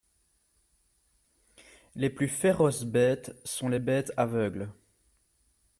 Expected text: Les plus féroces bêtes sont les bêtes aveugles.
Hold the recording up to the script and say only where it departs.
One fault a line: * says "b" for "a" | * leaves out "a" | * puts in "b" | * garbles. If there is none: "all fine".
all fine